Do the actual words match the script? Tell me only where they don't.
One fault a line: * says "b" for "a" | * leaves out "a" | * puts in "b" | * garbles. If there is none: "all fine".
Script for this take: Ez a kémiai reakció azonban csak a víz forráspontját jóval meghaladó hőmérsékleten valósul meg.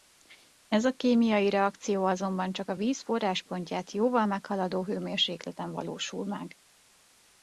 all fine